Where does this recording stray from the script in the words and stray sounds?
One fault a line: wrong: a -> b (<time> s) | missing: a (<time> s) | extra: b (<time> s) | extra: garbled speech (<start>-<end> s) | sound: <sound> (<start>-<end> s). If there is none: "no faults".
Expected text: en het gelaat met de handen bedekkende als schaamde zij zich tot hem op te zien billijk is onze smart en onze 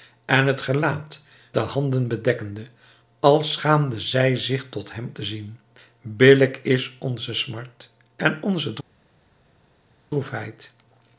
missing: met (1.2 s)
missing: op (5.1 s)